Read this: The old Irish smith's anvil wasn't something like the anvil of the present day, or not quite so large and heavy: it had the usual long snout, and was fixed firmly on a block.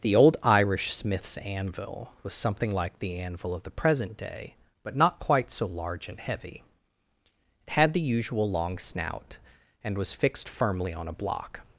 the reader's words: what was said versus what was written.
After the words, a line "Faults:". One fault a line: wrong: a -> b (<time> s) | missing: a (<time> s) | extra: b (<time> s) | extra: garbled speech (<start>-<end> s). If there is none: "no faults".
The old Irish smith's anvil was something like the anvil of the present day, but not quite so large and heavy: it had the usual long snout, and was fixed firmly on a block.
Faults:
wrong: wasn't -> was (2.2 s)
wrong: or -> but (4.8 s)